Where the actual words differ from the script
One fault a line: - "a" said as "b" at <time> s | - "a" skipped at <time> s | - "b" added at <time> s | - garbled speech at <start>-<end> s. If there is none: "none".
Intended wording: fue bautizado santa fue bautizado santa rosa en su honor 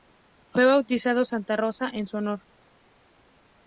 - "fue bautizado santa" skipped at 1.6 s